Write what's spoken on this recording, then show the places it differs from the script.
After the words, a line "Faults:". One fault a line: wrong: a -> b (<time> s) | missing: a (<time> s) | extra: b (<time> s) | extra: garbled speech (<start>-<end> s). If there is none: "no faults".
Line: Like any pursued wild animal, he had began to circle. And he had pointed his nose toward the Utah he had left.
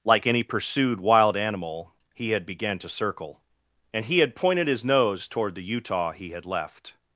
Like any pursued wild animal, he had began to circle. And he had pointed his nose toward the Utah he had left.
Faults:
no faults